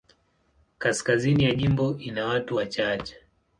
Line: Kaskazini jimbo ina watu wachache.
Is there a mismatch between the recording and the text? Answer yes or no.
yes